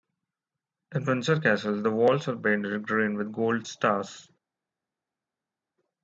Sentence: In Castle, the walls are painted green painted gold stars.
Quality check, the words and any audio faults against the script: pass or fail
fail